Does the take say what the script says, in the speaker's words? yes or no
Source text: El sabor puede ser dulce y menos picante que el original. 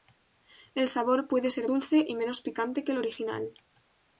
yes